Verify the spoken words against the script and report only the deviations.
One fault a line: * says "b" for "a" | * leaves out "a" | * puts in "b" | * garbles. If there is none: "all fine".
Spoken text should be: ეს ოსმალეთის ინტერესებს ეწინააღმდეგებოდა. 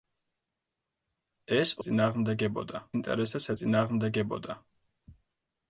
* says "ეწინააღმდეგებოდა" for "ოსმალეთის"